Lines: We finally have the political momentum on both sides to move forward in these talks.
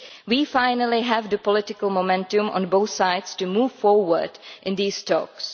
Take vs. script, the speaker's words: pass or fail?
pass